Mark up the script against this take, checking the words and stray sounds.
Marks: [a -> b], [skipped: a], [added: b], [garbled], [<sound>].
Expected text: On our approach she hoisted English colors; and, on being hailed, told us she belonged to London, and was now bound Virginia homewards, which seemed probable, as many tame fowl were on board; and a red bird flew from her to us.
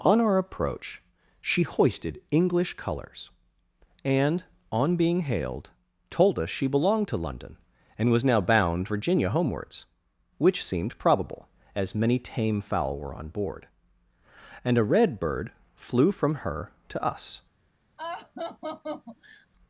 On our approach she hoisted English colors; and, on being hailed, told us she belonged to London, and was now bound Virginia homewards, which seemed probable, as many tame fowl were on board; and a red bird flew from her to us. [laugh]